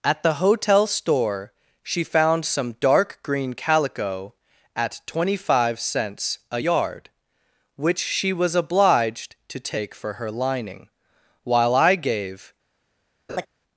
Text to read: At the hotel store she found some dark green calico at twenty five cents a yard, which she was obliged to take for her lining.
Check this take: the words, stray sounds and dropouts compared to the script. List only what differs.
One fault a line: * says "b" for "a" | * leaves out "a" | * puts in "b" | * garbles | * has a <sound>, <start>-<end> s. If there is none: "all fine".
* puts in "While I gave"
* has a laugh, 13.3-13.5 s